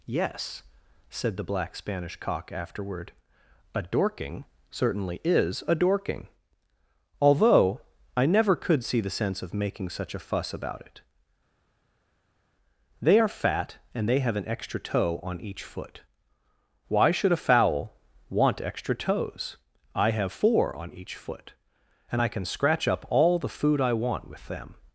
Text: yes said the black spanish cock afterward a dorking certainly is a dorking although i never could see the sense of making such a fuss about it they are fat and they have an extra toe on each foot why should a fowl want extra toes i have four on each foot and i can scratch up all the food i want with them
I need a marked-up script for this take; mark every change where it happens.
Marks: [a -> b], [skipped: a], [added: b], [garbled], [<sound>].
yes said the black spanish cock afterward a dorking certainly is a dorking although i never could see the sense of making such a fuss about it they are fat and they have an extra toe on each foot why should a fowl want extra toes i have four on each foot and i can scratch up all the food i want with them